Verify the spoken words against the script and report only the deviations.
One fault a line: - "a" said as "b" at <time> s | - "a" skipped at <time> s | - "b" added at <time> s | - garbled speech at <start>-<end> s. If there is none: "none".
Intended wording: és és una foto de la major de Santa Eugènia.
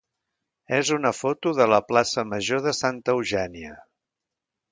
- "és" skipped at 0.9 s
- "plaça" added at 1.9 s